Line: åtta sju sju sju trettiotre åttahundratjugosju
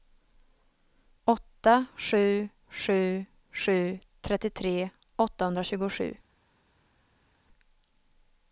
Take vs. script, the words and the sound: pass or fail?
pass